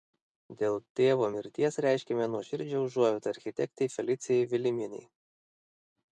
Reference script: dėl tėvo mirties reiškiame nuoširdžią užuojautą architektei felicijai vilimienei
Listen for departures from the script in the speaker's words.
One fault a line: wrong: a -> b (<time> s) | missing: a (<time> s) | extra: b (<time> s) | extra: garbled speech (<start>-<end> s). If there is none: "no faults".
no faults